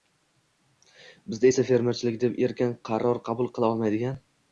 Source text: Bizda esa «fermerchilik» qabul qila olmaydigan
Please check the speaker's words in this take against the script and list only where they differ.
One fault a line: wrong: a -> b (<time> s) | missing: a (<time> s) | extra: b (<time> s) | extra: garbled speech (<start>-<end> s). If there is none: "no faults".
extra: deb erkin qaror (2.2 s)